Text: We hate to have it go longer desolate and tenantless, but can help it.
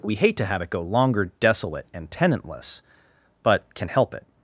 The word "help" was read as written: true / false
true